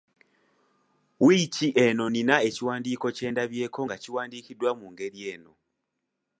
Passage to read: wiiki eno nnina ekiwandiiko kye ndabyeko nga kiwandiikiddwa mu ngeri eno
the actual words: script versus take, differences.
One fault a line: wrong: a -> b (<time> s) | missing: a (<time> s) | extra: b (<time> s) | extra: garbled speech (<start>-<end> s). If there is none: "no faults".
no faults